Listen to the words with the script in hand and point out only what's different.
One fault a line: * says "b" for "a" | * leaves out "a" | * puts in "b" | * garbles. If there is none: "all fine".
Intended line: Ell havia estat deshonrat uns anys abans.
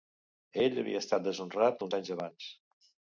all fine